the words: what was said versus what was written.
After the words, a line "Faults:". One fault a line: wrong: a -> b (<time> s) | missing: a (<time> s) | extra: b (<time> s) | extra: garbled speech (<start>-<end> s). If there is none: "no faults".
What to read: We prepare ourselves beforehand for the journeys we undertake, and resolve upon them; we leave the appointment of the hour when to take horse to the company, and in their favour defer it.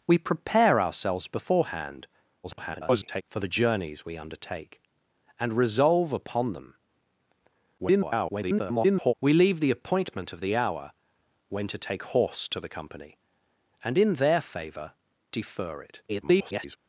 We prepare ourselves beforehand [garbled] for the journeys we undertake, and resolve upon them; [garbled] we leave the appointment of the hour when to take horse to the company, and in their favour defer it. [garbled]
Faults:
extra: garbled speech (2.4-3.2 s)
extra: garbled speech (7.8-9.1 s)
extra: garbled speech (16.1-16.8 s)